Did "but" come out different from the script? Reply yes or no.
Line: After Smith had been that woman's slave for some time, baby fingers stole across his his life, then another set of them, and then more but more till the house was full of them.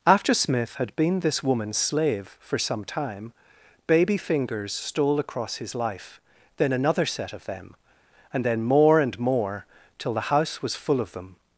yes